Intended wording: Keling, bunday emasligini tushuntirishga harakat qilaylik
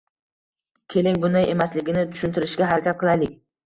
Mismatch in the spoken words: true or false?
false